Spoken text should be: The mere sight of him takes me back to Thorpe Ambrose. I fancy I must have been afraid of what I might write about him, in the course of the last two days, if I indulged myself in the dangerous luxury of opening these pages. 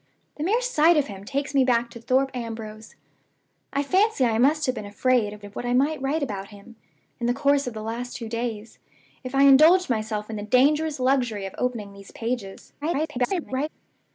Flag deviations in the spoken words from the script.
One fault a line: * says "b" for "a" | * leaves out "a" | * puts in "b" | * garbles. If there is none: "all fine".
* puts in "of"
* garbles